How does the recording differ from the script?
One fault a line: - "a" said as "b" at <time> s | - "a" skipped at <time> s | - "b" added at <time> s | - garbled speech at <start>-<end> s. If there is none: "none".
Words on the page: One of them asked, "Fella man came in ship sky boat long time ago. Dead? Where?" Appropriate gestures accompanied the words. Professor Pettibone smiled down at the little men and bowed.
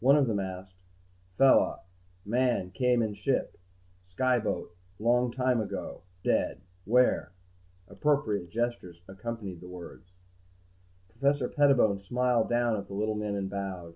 none